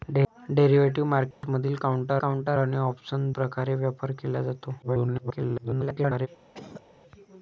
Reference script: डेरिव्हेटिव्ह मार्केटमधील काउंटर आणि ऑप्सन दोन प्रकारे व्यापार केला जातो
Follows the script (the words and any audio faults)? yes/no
no